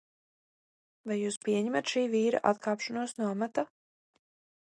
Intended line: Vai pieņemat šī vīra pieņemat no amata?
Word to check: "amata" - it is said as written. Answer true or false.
true